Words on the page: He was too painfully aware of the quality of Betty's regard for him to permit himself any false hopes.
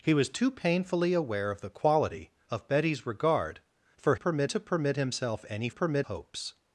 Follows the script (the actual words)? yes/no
no